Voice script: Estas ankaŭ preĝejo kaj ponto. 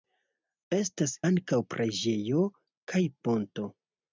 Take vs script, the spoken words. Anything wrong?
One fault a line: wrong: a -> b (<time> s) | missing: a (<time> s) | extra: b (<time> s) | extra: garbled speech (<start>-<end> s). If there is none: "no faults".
no faults